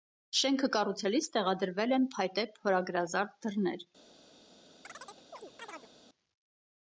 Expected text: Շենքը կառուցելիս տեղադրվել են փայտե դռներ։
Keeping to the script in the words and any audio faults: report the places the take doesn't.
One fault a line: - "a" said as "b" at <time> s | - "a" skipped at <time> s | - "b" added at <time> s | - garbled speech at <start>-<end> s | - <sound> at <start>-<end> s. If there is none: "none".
- "փորագրազարդ" added at 2.5 s
- chirp at 4.8-5.9 s